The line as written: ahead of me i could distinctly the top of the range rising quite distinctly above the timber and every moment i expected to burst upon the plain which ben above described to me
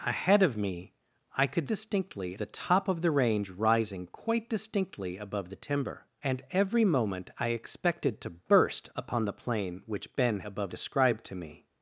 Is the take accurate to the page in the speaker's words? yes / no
yes